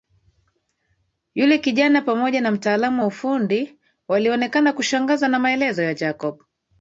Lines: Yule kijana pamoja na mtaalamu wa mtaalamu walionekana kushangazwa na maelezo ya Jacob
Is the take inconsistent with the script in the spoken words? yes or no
yes